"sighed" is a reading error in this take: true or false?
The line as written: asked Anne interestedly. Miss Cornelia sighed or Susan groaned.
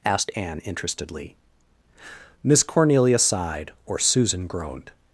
false